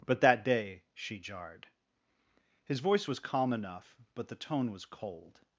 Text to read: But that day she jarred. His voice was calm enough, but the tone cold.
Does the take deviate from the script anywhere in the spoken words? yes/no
yes